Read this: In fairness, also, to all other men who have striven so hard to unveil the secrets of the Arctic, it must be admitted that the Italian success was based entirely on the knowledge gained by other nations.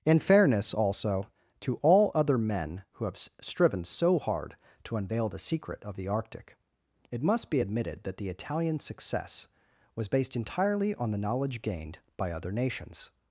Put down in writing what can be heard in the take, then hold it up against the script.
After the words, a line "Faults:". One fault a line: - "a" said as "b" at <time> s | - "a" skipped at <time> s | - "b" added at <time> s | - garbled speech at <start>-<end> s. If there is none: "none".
In fairness, also, to all other men who have striven so hard to unveil the secret of the Arctic, it must be admitted that the Italian success was based entirely on the knowledge gained by other nations.
Faults:
- "secrets" said as "secret" at 5.4 s